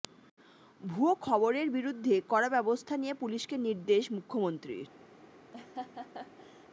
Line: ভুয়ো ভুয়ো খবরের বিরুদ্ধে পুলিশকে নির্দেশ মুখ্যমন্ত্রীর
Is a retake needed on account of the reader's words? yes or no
yes